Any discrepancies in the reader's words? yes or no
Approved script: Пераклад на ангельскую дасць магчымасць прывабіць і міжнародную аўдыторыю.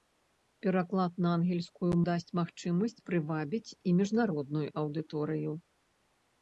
no